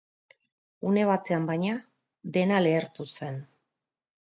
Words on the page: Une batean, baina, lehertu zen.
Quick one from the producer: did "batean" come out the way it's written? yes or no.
yes